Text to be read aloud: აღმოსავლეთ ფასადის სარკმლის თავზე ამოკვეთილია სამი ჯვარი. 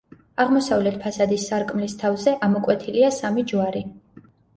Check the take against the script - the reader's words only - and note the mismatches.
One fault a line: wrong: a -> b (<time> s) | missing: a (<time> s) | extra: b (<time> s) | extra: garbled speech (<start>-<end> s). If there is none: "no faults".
no faults